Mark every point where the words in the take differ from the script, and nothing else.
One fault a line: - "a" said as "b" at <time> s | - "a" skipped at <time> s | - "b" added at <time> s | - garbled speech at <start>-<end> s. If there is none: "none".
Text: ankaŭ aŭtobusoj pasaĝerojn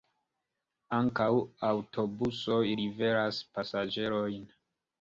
- "liveras" added at 2.8 s